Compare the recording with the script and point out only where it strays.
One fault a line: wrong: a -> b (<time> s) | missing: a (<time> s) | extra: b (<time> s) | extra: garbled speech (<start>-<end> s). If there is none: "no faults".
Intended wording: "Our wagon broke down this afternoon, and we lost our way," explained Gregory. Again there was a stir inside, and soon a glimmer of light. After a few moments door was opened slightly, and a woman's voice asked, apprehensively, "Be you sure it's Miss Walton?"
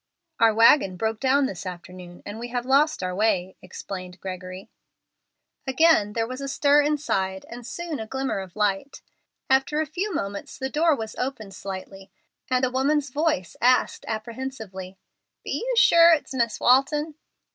extra: have (2.5 s)
extra: the (10.6 s)